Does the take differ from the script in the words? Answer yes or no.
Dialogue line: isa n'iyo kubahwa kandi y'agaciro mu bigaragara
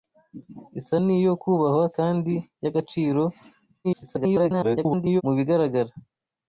yes